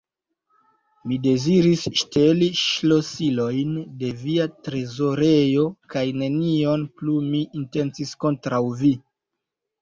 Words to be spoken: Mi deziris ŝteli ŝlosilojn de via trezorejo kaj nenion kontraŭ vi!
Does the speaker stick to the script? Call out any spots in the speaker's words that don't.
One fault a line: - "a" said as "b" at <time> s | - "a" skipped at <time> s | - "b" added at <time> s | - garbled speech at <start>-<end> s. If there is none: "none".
- "plu mi intencis" added at 7.0 s